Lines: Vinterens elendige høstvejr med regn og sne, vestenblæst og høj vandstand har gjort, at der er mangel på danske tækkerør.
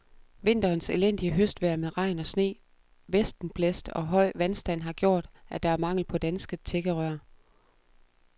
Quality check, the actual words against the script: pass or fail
pass